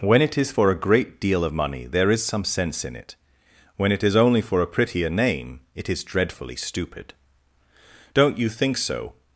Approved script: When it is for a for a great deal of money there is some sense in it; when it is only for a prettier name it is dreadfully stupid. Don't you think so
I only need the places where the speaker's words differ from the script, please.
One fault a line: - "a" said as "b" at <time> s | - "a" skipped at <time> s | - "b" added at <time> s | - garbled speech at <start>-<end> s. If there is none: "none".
- "for a" skipped at 0.8 s